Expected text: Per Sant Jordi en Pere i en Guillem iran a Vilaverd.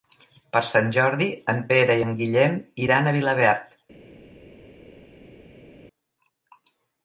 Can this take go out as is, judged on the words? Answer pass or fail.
pass